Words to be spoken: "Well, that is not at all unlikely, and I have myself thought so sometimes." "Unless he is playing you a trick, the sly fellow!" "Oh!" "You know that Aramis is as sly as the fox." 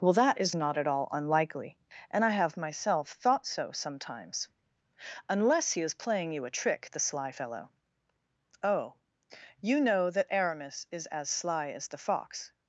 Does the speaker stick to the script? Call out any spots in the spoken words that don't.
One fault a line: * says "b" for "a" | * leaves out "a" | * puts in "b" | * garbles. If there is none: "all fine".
all fine